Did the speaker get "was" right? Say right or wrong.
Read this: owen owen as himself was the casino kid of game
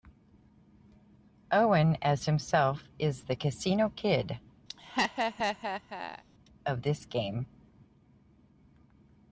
wrong